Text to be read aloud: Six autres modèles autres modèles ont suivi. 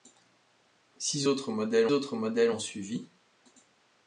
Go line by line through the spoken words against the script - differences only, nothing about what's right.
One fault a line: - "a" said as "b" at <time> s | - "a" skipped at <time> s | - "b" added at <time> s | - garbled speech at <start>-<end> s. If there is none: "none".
none